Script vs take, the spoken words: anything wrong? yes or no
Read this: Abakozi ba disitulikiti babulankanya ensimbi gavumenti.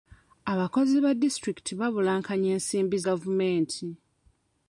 no